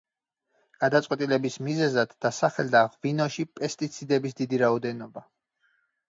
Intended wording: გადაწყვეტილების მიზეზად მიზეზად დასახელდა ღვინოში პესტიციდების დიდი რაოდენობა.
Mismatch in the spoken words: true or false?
true